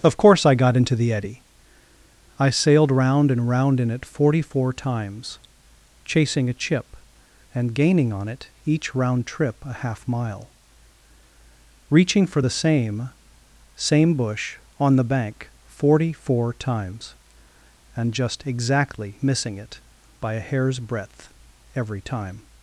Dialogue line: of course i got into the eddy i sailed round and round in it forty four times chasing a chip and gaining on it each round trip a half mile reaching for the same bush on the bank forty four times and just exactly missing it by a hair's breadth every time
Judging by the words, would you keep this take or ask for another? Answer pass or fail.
fail